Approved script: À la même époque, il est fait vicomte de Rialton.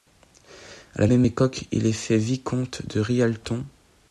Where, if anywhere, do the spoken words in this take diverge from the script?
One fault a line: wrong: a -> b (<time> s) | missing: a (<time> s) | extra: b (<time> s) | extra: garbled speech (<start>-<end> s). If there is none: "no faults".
no faults